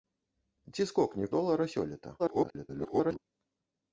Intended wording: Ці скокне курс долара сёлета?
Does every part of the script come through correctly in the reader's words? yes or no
no